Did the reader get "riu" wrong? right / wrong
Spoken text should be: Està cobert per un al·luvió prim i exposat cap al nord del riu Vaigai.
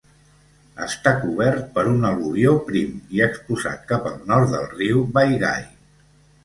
right